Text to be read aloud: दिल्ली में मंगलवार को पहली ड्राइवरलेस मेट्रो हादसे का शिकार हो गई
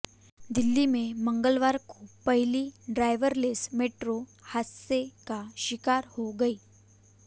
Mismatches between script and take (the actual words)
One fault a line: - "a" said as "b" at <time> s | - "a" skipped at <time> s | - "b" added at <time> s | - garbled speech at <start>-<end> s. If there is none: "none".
none